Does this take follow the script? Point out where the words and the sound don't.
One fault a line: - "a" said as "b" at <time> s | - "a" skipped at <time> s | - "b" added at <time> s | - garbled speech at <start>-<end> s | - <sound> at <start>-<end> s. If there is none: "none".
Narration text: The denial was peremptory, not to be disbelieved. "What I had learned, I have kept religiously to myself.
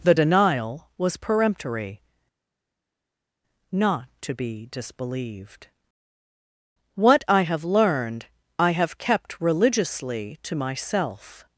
- "had" said as "have" at 7.4 s